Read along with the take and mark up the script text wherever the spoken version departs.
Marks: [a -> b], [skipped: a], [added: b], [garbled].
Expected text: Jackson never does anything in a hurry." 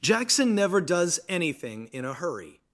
Jackson never does anything in a hurry."